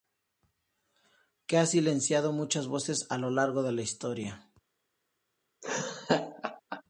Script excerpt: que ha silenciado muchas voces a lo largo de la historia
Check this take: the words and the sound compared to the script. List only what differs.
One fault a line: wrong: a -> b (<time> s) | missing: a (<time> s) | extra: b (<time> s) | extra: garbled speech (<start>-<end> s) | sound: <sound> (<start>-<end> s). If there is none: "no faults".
sound: laugh (5.6-6.8 s)